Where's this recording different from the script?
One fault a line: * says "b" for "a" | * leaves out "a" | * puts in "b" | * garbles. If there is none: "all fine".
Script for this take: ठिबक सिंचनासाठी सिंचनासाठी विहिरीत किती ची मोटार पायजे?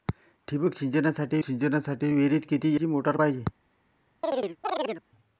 all fine